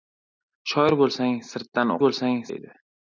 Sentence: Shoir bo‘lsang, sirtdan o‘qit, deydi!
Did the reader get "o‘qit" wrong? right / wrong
wrong